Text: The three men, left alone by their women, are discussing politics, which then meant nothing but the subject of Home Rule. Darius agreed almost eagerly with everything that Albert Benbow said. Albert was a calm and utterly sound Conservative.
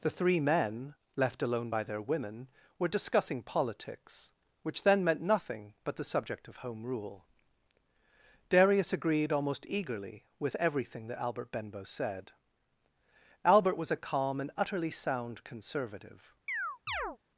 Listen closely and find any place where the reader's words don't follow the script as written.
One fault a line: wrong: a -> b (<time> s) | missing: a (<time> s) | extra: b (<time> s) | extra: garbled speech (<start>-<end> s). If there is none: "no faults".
wrong: are -> were (2.8 s)